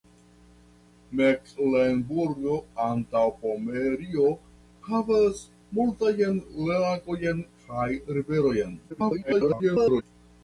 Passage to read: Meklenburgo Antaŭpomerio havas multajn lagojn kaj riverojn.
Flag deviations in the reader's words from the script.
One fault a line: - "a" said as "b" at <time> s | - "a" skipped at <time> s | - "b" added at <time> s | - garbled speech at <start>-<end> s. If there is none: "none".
- garbled speech at 8.9-10.0 s